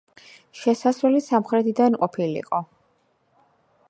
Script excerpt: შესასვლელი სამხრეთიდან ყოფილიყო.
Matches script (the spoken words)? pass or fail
pass